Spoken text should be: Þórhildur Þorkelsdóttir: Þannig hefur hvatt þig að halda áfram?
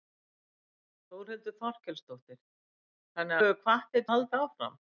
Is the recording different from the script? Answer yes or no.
no